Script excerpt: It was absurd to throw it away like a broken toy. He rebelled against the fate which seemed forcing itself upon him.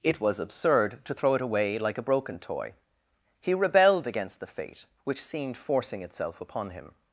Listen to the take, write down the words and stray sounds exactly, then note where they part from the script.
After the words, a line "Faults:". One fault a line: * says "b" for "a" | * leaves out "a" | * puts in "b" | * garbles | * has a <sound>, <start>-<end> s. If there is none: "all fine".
It was absurd to throw it away like a broken toy. He rebelled against the fate which seemed forcing itself upon him.
Faults:
all fine